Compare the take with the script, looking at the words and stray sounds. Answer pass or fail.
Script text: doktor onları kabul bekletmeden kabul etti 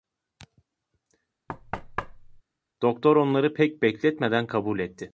fail